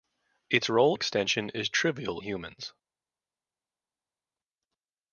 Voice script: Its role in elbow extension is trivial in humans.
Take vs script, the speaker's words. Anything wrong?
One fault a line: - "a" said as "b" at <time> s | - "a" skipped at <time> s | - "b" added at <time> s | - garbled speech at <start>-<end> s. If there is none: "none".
- "in elbow" skipped at 1.0 s
- "in" skipped at 2.2 s